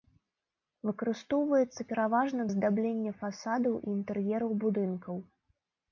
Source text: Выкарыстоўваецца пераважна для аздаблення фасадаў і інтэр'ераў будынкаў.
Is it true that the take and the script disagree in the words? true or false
true